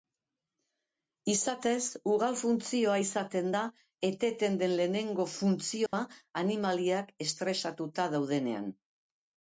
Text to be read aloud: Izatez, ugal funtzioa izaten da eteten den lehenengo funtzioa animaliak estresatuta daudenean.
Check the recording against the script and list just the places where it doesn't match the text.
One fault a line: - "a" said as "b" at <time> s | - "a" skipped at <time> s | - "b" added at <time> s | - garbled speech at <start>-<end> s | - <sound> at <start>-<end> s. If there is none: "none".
- dropout at 5.9-5.9 s